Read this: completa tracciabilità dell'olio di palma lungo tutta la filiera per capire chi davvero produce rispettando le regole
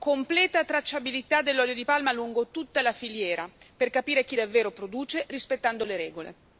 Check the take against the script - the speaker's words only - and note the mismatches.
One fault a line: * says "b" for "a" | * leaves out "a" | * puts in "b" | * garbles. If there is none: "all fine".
all fine